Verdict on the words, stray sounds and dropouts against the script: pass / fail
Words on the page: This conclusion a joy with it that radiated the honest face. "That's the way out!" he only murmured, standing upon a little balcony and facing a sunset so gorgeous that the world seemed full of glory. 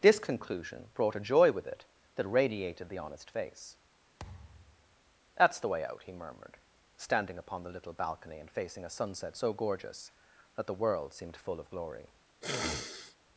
fail